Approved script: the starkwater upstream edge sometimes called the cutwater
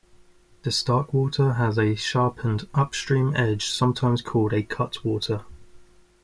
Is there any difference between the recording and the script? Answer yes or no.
yes